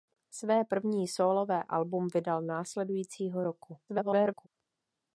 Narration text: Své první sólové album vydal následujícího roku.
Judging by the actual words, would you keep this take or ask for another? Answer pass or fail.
fail